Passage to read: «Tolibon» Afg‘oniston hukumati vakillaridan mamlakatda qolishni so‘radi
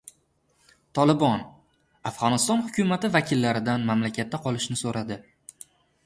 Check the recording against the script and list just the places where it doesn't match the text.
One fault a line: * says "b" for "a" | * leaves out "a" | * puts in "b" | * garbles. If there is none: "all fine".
all fine